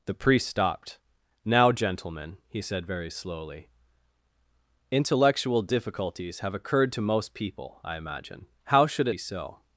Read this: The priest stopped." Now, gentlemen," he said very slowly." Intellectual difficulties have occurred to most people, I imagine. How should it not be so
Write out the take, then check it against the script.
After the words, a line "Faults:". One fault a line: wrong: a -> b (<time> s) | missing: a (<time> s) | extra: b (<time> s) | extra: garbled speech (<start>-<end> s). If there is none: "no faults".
The priest stopped." Now, gentlemen," he said very slowly." Intellectual difficulties have occurred to most people, I imagine. How should it be so
Faults:
missing: not (9.2 s)